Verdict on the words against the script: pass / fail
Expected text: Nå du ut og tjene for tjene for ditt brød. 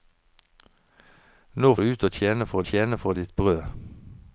pass